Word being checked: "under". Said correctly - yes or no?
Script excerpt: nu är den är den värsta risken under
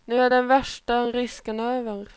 no